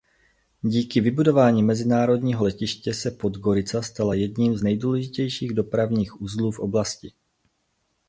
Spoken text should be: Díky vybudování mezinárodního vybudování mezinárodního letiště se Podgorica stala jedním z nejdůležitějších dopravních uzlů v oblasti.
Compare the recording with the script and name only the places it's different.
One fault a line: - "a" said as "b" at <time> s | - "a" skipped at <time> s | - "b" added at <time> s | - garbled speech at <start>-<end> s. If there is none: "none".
- "vybudování mezinárodního" skipped at 2.5 s